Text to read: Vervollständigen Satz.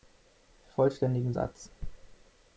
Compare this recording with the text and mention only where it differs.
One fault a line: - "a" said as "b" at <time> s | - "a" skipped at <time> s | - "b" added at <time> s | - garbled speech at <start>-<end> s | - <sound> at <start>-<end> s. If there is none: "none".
none